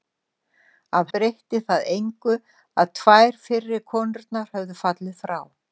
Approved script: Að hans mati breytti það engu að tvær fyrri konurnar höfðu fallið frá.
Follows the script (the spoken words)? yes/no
no